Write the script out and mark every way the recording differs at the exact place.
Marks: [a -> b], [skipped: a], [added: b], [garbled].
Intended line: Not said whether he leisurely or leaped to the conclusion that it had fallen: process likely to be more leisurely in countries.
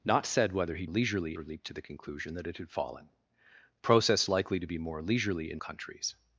Not said whether he leisurely or leaped to the conclusion that it had fallen: process likely to be more leisurely in countries.